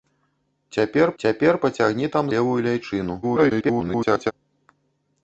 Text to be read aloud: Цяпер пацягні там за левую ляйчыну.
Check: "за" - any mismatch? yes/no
yes